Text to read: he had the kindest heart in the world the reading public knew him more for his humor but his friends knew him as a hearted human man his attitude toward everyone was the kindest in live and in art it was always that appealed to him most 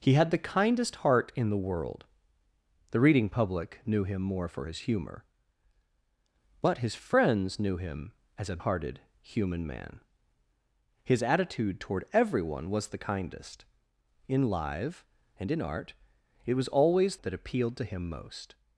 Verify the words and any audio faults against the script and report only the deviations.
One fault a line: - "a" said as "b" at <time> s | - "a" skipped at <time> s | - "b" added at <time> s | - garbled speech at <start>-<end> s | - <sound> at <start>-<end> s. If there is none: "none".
none